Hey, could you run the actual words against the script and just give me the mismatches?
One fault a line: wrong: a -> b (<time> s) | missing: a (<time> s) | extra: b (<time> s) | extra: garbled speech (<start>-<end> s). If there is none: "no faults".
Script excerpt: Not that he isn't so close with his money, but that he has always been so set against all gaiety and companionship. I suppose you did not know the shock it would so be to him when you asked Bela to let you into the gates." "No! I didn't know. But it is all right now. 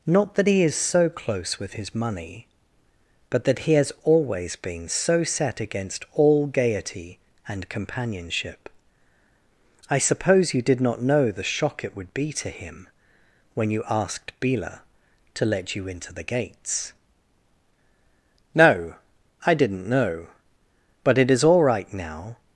wrong: isn't -> is (0.6 s)
missing: so (12.1 s)